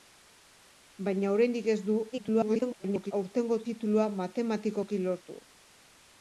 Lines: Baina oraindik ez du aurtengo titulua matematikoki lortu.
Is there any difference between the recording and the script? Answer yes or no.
yes